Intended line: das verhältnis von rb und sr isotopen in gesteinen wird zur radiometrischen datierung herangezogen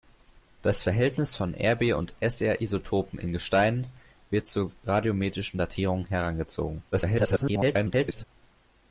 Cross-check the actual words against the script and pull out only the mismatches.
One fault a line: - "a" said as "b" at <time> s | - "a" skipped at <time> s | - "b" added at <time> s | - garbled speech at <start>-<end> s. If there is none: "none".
- garbled speech at 6.9-8.2 s